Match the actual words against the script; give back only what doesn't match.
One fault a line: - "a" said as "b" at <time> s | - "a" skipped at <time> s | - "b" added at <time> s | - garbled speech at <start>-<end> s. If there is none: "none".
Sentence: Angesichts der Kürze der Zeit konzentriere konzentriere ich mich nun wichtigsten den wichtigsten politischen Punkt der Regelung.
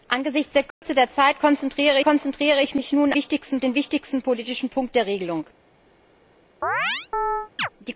none